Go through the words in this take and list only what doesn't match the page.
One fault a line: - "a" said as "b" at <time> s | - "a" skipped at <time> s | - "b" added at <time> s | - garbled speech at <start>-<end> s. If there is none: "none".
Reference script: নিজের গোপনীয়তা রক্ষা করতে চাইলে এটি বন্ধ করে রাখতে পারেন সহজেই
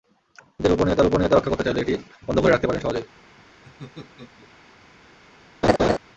- "গোপনীয়তা" added at 1.0 s